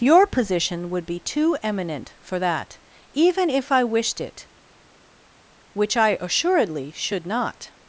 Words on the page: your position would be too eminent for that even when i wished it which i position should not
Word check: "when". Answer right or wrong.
wrong